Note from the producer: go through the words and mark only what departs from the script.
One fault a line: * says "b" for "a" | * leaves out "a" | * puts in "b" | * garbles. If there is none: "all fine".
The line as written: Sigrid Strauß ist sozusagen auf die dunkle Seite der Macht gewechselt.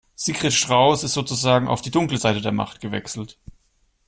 all fine